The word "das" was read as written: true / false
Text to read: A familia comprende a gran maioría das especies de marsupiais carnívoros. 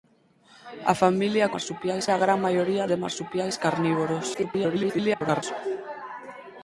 false